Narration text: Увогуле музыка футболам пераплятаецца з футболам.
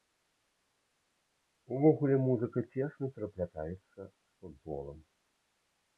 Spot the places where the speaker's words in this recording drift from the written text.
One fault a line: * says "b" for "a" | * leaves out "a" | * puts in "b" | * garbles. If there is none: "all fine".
* says "цесна" for "футболам"